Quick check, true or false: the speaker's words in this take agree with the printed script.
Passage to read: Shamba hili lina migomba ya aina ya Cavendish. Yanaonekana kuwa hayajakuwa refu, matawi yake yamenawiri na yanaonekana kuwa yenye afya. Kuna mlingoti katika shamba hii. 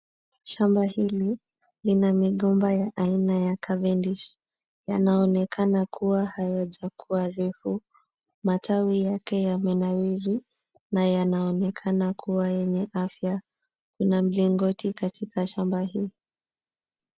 true